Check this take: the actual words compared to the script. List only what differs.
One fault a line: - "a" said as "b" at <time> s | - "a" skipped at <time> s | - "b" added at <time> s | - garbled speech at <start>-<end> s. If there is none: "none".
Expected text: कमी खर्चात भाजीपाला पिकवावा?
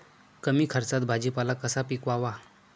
- "कसा" added at 1.6 s